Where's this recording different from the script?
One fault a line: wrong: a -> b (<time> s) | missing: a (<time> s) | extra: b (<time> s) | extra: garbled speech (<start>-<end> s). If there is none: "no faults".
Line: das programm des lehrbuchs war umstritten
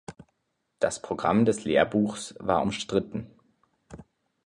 no faults